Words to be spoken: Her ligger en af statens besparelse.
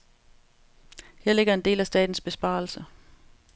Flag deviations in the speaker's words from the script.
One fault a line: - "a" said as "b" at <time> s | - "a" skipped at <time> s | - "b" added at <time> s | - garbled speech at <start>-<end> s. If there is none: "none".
- "del" added at 1.6 s